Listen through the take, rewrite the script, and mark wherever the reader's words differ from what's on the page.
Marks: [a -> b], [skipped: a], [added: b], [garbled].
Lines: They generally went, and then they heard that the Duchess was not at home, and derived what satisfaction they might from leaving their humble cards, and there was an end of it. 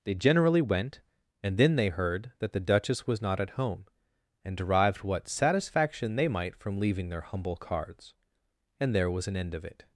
They generally went, and then they heard that the Duchess was not at home, and derived what satisfaction they might from leaving their humble cards, and there was an end of it.